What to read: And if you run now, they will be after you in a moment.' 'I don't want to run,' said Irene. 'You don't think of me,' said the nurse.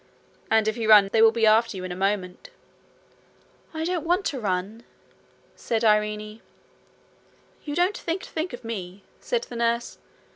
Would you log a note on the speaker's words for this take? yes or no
yes